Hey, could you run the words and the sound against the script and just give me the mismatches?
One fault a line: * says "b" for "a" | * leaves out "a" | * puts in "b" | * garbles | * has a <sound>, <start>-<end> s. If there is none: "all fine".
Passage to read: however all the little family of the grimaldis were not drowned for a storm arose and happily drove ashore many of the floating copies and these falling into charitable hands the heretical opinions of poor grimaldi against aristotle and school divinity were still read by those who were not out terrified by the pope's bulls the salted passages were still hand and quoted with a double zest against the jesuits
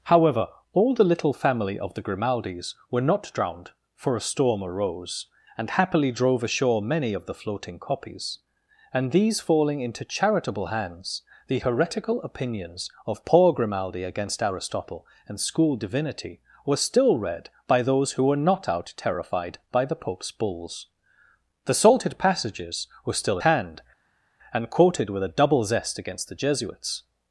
all fine